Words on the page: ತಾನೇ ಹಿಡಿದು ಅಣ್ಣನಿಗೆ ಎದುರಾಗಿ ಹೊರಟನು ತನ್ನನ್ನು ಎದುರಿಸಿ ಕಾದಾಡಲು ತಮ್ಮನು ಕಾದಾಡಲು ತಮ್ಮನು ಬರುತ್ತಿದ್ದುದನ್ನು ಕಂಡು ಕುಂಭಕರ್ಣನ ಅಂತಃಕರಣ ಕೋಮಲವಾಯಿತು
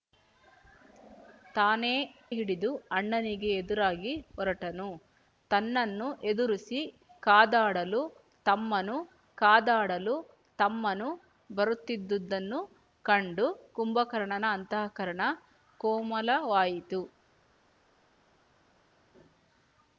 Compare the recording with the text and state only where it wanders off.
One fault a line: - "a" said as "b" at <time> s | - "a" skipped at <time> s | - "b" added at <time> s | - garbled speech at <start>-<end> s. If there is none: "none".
none